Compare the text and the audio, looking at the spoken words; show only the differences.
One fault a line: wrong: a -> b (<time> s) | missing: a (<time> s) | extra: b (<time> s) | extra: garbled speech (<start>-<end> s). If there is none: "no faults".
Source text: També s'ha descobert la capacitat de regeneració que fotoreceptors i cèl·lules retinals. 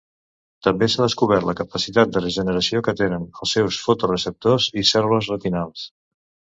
extra: tenen els seus (3.0 s)